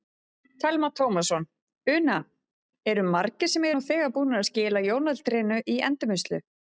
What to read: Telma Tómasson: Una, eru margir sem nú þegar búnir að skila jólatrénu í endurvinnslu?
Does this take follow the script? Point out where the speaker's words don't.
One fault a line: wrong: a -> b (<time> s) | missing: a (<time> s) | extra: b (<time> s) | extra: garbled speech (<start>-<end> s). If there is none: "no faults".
no faults